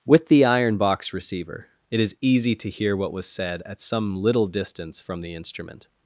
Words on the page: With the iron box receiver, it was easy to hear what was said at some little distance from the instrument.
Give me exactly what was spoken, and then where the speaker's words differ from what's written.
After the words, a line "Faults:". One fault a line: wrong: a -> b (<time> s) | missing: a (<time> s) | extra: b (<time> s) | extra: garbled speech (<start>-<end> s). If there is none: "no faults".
With the iron box receiver, it is easy to hear what was said at some little distance from the instrument.
Faults:
wrong: was -> is (2.0 s)